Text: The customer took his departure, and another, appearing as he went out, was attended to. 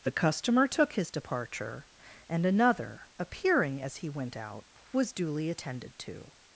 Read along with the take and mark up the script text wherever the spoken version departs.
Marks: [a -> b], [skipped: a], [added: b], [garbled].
The customer took his departure, and another, appearing as he went out, was [added: duly] attended to.